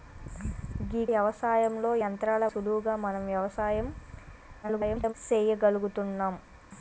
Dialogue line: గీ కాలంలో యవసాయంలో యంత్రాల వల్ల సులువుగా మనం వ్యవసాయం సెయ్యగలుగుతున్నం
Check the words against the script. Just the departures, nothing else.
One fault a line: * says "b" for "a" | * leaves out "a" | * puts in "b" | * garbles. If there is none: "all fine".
* leaves out "కాలంలో"
* leaves out "వల్ల"
* garbles